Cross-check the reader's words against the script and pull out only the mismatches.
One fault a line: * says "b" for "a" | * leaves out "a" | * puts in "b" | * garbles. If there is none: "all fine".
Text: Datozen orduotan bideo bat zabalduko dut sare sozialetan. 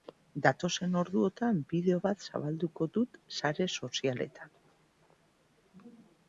all fine